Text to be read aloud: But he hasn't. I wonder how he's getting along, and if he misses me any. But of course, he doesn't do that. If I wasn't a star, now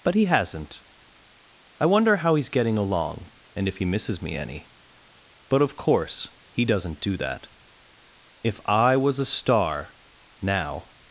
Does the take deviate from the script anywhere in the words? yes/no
yes